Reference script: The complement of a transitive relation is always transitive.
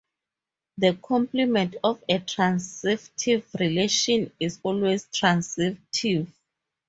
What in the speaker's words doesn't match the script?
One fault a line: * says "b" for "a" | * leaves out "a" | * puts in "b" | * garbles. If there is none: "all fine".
all fine